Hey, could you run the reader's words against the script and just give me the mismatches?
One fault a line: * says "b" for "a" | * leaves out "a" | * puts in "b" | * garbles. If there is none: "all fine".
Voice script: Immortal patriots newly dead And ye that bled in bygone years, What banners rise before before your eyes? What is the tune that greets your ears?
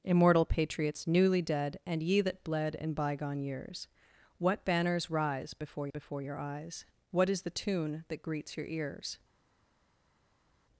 all fine